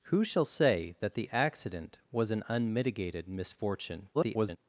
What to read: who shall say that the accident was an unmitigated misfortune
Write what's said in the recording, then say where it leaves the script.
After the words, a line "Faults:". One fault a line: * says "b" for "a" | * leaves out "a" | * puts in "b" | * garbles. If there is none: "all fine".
who shall say that the accident was an unmitigated misfortune [garbled]
Faults:
* garbles